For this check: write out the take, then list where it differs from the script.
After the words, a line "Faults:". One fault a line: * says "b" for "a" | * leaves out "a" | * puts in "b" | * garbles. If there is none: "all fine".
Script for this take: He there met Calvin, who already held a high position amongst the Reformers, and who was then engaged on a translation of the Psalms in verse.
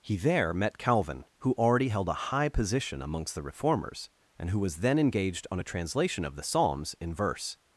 He there met Calvin, who already held a high position amongst the Reformers, and who was then engaged on a translation of the Psalms in verse.
Faults:
all fine